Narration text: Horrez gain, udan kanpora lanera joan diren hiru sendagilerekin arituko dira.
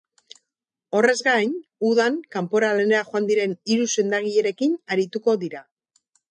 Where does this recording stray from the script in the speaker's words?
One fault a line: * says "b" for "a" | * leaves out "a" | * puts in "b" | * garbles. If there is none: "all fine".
all fine